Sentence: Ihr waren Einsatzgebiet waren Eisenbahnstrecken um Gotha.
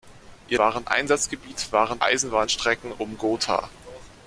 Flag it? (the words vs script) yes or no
no